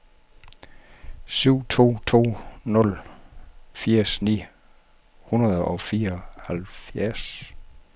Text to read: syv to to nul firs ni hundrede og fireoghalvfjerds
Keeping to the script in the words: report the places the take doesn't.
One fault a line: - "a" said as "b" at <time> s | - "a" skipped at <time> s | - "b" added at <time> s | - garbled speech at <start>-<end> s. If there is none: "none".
none